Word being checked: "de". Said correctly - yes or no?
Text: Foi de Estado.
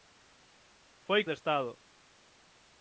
yes